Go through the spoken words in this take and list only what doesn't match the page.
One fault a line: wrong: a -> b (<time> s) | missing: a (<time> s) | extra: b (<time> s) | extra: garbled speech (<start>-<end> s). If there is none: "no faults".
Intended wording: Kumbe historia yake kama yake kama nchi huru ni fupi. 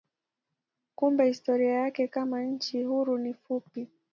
missing: yake kama (2.4 s)